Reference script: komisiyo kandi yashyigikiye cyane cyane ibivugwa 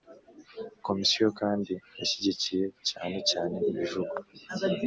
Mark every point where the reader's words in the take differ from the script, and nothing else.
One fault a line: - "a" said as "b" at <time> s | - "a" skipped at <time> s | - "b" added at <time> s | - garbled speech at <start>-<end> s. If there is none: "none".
none